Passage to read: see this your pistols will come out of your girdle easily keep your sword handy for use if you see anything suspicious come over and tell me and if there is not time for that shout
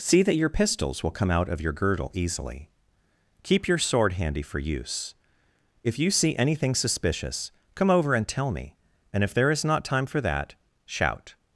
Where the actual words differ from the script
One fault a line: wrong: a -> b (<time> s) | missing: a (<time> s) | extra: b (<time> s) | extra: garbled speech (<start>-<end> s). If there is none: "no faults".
wrong: this -> that (0.2 s)